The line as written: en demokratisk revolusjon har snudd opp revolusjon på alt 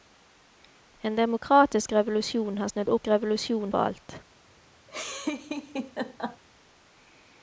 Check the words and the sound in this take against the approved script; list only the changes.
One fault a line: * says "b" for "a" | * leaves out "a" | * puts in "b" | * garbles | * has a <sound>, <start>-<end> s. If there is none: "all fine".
* has a laugh, 4.9-6.4 s